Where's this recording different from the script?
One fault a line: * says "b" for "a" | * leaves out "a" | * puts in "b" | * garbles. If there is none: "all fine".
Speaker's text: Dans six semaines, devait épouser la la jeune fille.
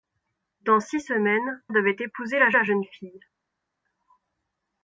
all fine